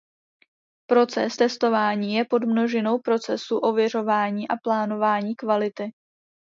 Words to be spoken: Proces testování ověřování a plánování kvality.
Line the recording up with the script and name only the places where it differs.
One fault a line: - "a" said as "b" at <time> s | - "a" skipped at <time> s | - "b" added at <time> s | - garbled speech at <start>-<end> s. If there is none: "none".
- "je podmnožinou procesu" added at 2.1 s